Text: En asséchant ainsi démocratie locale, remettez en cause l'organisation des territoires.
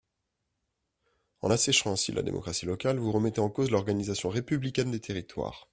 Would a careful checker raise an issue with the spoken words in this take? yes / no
yes